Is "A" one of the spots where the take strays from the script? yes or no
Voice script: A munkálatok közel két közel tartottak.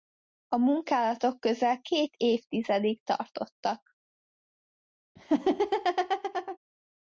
no